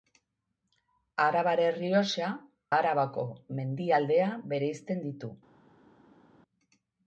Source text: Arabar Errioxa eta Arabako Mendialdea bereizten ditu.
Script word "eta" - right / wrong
wrong